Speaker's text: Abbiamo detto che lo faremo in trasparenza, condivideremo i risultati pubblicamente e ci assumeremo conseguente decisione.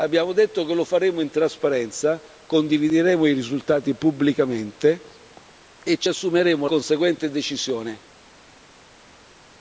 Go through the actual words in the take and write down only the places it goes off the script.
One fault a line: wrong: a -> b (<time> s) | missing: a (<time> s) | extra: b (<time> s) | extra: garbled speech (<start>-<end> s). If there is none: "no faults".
no faults